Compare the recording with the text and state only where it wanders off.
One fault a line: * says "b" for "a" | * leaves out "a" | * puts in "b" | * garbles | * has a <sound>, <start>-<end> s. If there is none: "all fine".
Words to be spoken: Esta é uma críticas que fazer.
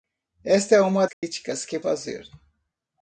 * has a dropout, 1.1-1.2 s